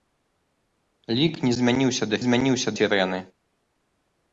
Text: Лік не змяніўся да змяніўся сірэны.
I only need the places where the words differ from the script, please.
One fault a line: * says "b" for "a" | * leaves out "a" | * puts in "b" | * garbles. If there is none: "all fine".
all fine